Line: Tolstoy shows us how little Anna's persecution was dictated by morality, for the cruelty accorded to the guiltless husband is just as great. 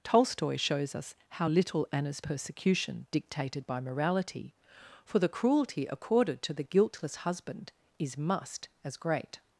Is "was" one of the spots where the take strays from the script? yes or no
yes